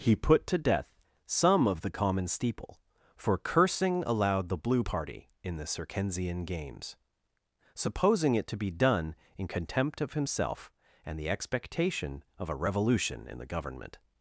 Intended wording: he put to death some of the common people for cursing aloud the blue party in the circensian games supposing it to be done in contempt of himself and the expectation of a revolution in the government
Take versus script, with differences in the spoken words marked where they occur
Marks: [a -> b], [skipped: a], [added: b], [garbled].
he put to death some of the common [people -> steeple] for cursing aloud the blue party in the circensian games supposing it to be done in contempt of himself and the expectation of a revolution in the government